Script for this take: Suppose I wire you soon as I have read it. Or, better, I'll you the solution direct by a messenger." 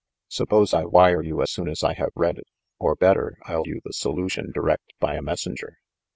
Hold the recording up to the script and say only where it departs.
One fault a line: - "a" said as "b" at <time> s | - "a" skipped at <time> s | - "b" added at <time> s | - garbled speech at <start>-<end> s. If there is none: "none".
none